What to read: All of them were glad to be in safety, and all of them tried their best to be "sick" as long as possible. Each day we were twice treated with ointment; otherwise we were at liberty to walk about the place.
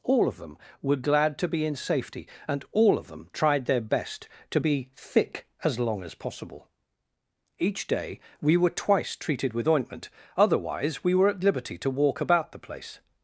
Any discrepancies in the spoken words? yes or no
yes